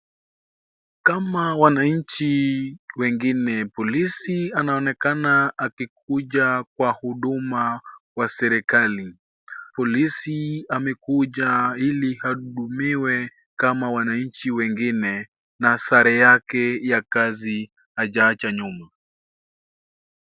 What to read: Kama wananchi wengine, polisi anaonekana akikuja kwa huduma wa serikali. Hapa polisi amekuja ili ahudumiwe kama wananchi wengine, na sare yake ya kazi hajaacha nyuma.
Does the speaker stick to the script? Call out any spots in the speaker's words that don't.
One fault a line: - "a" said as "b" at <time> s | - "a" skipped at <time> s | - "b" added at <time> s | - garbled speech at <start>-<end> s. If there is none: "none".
- "Hapa" skipped at 9.2 s